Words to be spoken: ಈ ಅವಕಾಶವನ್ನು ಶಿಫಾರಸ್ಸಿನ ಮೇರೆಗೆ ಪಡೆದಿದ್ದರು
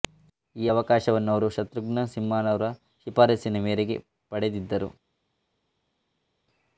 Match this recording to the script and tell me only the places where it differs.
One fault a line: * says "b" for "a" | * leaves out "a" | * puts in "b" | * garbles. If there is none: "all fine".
* puts in "ಅವರು ಶತ್ರುಘ್ನ ಸಿನ್ಹಾರವರ"